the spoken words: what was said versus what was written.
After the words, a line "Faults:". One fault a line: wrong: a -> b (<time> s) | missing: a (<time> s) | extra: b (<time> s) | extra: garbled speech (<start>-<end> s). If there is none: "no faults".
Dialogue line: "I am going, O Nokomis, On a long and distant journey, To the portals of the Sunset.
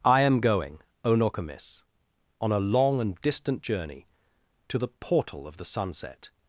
"I am going, O Nokomis, On a long and distant journey, To the portal of the Sunset.
Faults:
wrong: portals -> portal (4.9 s)